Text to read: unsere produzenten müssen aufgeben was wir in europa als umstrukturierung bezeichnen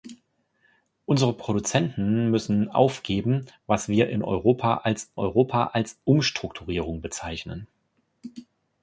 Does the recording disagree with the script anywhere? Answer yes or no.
yes